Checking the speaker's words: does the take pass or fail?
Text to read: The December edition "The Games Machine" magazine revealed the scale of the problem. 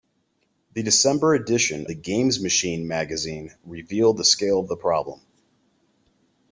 pass